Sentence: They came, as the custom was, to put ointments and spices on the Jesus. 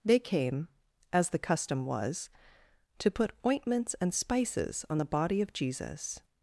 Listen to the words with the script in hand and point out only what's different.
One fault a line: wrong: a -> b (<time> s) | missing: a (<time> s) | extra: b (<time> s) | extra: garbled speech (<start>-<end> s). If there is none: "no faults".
extra: body of (5.0 s)